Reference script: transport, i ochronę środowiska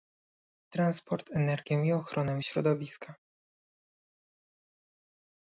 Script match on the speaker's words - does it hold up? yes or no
no